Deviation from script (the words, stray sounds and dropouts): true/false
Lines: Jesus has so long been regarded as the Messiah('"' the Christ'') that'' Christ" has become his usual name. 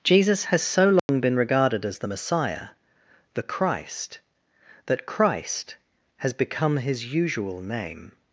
true